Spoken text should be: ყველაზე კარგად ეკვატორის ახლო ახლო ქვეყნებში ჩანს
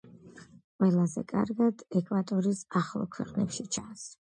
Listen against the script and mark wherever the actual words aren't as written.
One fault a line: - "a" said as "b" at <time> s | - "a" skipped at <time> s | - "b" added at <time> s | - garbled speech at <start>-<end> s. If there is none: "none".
- "ახლო" skipped at 3.1 s